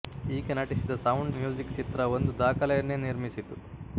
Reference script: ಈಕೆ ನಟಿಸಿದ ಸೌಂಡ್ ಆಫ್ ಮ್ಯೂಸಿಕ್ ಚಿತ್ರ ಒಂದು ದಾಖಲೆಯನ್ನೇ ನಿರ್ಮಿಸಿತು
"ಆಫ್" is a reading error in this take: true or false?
true